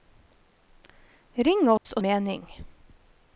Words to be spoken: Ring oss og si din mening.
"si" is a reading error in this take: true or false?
true